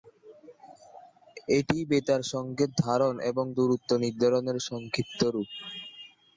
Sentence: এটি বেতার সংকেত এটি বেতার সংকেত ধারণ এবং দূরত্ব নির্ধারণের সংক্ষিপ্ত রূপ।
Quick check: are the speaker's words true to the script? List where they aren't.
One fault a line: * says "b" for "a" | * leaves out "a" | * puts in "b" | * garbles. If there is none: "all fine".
* leaves out "এটি বেতার সংকেত"